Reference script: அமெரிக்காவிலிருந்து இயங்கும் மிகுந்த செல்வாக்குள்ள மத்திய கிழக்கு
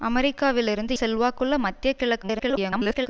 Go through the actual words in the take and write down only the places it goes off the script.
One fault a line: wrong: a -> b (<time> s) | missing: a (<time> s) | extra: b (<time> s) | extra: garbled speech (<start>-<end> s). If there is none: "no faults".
missing: இயங்கும் மிகுந்த (0.9 s)
extra: garbled speech (2.2-3.1 s)